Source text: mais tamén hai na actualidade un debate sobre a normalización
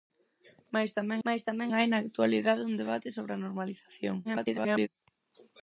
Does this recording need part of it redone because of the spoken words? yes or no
yes